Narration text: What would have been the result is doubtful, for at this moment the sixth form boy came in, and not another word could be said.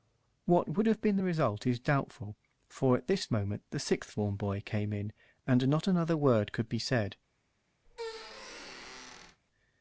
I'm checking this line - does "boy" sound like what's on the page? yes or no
yes